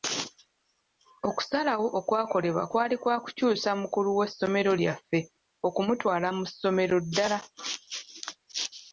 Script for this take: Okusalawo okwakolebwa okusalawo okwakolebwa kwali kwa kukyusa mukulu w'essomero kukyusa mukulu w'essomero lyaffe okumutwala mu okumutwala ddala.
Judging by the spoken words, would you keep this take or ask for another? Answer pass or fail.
fail